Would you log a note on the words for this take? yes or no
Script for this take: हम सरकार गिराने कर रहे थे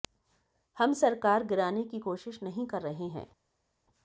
yes